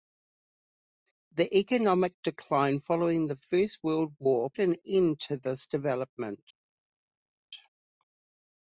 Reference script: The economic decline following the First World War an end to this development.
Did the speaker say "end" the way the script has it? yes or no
yes